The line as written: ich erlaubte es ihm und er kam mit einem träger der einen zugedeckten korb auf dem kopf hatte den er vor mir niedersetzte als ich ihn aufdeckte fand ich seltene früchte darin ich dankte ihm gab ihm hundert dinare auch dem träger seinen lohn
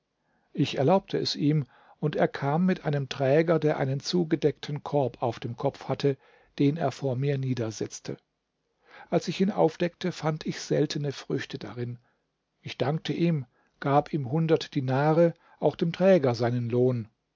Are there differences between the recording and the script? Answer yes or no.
no